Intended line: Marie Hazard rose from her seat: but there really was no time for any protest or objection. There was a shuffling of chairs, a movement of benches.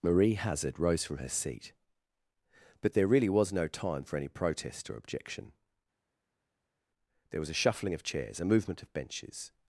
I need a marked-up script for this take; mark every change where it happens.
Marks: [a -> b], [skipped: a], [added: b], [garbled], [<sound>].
Marie Hazard rose from her seat: but there really was no time for any protest or objection. There was a shuffling of chairs, a movement of benches.